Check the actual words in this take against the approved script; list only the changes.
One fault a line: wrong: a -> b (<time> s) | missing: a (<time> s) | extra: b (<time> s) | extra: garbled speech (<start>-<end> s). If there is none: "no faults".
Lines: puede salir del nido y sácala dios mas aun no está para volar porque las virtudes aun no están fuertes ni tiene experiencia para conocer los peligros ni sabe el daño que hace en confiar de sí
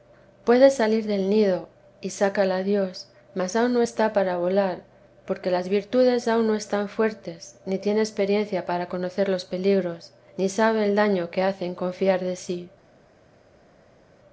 no faults